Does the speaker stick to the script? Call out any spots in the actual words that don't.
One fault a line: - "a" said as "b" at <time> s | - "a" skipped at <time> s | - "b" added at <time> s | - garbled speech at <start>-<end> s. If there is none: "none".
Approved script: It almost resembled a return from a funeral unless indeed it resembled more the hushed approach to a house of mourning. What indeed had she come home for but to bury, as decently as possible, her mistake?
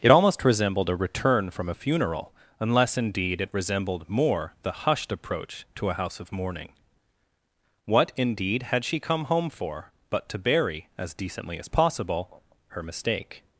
none